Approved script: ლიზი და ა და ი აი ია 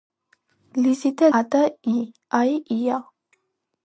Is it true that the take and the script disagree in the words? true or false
false